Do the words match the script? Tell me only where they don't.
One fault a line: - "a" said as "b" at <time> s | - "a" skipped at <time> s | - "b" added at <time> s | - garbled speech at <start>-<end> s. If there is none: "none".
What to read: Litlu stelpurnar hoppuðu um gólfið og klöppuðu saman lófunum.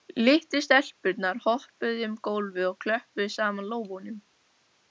none